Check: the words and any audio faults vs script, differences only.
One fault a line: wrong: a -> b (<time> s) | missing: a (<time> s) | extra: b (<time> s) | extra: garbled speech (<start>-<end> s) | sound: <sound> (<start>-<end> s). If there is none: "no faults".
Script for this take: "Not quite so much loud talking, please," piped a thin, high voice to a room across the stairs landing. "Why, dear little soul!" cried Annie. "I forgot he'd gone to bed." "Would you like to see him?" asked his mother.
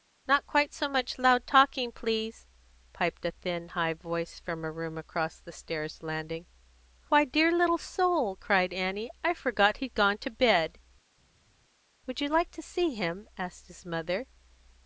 wrong: to -> from (4.4 s)